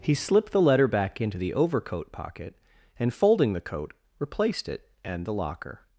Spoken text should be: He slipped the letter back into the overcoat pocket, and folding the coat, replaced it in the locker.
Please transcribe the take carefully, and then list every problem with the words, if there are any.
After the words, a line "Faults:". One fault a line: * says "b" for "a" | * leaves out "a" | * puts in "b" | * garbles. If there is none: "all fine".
He slipped the letter back into the overcoat pocket, and folding the coat, replaced it and the locker.
Faults:
* says "and" for "in"